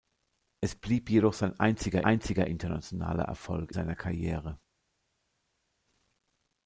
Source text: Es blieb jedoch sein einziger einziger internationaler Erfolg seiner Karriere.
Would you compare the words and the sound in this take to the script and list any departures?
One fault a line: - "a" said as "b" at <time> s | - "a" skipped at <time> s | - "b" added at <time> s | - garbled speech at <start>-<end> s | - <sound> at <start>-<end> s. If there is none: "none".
none